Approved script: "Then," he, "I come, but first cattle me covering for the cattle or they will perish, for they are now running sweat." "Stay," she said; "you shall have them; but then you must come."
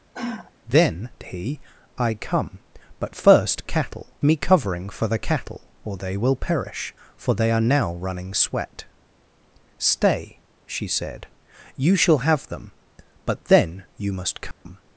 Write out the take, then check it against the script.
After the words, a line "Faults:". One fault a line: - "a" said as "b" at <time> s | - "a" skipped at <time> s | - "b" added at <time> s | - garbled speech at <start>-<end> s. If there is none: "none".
"Then," he, "I come, but first cattle me covering for the cattle or they will perish, for they are now running sweat." "Stay," she said; "you shall have them; but then you must come."
Faults:
none